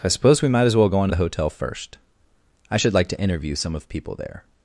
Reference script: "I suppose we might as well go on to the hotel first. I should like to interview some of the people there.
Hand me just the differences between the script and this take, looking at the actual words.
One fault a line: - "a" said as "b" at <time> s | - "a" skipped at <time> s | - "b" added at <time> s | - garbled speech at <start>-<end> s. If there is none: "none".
- "the" skipped at 3.9 s